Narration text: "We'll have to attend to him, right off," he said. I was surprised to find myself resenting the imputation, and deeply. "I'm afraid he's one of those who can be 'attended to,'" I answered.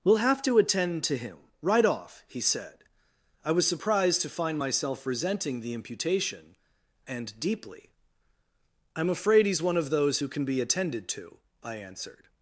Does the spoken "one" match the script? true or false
true